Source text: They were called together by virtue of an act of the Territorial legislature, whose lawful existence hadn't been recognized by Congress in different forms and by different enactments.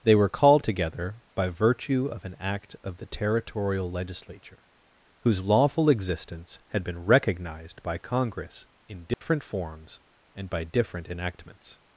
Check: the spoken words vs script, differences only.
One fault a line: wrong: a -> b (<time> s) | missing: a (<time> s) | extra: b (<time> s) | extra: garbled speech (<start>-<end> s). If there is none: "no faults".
wrong: hadn't -> had (6.7 s)